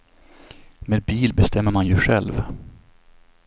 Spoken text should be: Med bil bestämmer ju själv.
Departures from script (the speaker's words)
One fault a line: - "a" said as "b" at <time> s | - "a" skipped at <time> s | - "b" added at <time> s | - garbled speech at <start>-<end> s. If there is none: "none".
- "man" added at 1.7 s